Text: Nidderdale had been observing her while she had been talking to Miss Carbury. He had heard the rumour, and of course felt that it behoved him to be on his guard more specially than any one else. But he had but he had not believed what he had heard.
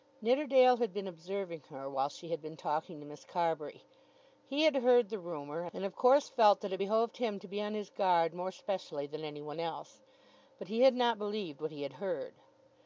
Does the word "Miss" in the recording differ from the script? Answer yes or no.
no